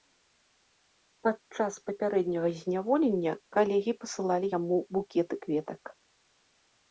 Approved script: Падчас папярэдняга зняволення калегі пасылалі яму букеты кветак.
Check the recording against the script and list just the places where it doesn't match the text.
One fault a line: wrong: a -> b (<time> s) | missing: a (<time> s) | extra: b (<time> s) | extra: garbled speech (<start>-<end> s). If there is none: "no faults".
no faults